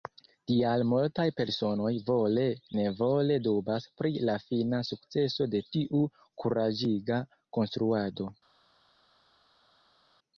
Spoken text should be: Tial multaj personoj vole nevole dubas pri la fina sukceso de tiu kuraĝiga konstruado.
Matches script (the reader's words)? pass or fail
pass